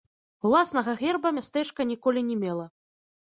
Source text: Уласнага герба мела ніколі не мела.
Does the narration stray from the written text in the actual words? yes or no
yes